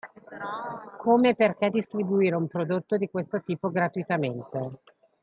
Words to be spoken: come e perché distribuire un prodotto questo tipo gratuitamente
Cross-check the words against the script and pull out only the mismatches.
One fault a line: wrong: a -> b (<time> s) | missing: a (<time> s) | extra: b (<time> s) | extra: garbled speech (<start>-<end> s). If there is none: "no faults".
extra: di (3.0 s)